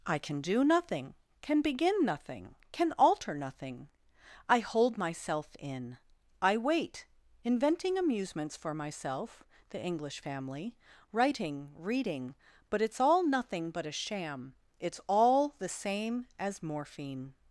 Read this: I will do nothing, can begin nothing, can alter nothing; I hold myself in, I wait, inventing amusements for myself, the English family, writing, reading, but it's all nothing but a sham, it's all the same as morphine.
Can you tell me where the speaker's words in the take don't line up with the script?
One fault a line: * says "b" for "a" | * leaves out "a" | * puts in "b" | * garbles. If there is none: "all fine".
* says "can" for "will"